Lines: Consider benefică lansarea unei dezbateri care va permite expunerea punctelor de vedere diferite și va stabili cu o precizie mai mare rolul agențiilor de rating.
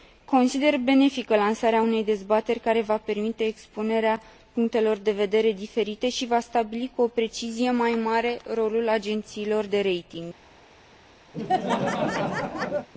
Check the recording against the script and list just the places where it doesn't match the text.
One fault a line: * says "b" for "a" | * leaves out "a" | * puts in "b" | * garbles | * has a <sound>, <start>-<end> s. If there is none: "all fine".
* has a laugh, 11.3-12.9 s